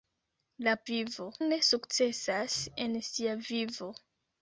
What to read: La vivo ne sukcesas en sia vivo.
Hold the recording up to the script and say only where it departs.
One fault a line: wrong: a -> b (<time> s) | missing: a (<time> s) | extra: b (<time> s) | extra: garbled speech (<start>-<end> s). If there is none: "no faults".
no faults